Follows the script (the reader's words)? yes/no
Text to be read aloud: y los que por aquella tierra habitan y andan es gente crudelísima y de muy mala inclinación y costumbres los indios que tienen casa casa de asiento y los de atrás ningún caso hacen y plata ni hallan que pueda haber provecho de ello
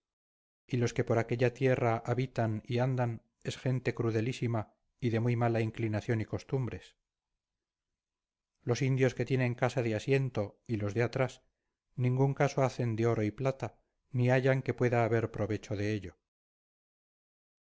no